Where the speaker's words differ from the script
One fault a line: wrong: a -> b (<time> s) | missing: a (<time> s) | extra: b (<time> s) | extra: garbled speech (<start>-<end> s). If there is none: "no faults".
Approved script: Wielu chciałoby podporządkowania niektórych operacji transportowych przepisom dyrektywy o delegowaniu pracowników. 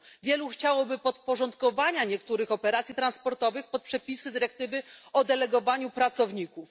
no faults